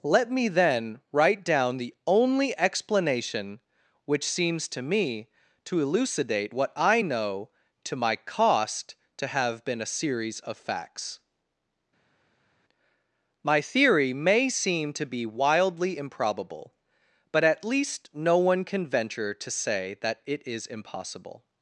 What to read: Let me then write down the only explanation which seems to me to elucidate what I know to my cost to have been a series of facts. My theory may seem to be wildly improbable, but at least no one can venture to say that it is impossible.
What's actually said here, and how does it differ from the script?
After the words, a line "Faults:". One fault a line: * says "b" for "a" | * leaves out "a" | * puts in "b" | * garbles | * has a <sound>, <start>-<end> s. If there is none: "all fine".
Let me then write down the only explanation which seems to me to elucidate what I know to my cost to have been a series of facts. My theory may seem to be wildly improbable, but at least no one can venture to say that it is impossible.
Faults:
all fine